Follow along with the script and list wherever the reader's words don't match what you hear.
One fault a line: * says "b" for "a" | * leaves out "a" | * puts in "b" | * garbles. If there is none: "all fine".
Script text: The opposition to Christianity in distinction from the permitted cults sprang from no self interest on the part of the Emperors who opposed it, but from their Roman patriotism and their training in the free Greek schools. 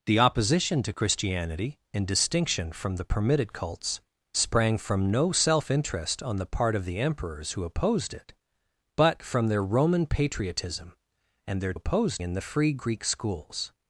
* says "opposed" for "training"